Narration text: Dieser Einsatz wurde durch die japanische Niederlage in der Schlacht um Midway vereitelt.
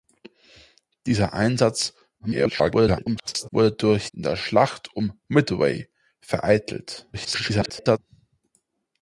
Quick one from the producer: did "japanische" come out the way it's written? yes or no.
no